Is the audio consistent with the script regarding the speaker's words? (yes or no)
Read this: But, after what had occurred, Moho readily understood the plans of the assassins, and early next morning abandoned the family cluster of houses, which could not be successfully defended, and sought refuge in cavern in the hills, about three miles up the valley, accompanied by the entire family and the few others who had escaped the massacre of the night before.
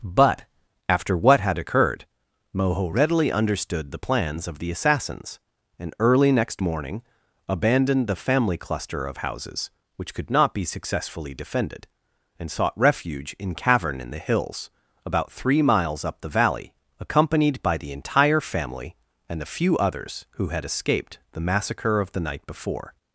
yes